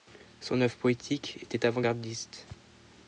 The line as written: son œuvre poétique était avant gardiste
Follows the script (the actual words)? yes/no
yes